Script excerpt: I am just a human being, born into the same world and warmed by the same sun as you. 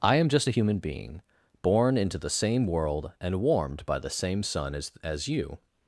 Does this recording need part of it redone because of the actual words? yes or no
yes